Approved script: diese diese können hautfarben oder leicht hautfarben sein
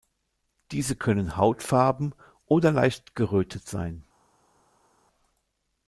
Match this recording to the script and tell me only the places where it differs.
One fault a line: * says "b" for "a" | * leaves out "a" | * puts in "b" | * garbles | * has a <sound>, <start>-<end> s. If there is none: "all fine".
* leaves out "diese"
* says "gerötet" for "hautfarben"